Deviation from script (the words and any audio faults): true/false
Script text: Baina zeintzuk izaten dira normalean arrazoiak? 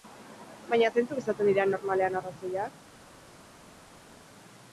false